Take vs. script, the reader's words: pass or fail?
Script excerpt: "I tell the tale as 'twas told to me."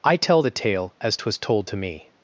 pass